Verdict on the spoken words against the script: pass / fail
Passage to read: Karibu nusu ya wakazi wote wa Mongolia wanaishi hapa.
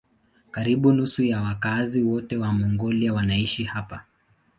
pass